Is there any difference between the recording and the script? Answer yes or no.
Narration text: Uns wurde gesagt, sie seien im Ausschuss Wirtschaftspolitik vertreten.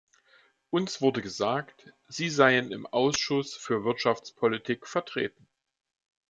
yes